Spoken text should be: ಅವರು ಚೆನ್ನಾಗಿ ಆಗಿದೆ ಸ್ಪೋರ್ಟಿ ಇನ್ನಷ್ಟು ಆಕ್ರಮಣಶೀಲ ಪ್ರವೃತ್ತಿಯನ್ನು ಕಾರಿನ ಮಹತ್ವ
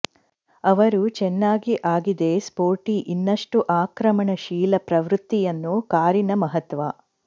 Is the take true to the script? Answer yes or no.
yes